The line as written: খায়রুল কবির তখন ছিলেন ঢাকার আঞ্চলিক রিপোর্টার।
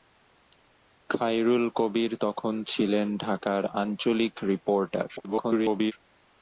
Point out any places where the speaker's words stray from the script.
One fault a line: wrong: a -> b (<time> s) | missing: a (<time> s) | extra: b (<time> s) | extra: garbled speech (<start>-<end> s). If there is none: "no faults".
extra: garbled speech (5.2-5.9 s)